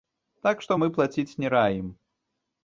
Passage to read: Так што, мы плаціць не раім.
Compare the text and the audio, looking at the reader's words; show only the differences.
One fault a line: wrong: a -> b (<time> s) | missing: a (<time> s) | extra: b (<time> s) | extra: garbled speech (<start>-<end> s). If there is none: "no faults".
no faults